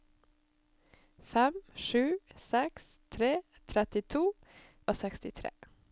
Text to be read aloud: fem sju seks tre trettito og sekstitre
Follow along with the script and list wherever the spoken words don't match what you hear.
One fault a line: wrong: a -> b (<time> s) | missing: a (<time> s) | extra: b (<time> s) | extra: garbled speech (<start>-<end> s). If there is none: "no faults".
no faults